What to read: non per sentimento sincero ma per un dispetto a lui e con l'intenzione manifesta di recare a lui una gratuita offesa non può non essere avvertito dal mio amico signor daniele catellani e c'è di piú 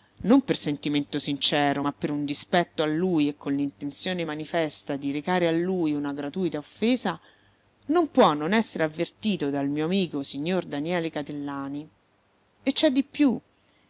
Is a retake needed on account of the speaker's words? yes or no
no